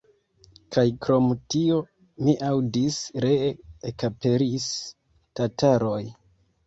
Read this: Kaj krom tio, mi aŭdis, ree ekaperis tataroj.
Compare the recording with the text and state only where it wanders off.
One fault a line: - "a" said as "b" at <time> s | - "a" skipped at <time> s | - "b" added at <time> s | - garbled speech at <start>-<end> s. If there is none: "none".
none